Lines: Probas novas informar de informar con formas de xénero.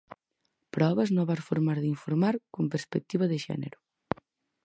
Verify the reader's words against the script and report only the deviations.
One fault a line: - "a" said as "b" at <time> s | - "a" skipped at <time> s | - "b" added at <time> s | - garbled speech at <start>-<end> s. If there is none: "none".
- "informar" said as "formas" at 1.5 s
- "formas" said as "perspectiva" at 2.7 s